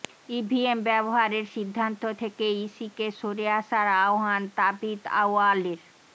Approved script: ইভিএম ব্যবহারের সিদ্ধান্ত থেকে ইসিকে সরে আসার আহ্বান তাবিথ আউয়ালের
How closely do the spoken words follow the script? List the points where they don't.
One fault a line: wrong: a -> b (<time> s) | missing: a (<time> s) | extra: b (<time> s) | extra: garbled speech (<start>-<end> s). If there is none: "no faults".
no faults